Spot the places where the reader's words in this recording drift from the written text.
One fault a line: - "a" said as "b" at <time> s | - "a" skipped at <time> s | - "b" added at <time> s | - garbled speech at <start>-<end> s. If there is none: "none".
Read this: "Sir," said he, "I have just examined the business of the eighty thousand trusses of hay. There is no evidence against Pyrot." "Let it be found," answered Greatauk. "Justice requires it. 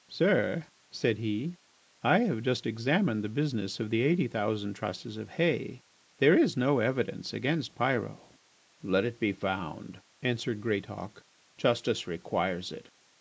none